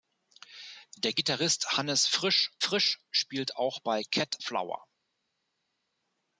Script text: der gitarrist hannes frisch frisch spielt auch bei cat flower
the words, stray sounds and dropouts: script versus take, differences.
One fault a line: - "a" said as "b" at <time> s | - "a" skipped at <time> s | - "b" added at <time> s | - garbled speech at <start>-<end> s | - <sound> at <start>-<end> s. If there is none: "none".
none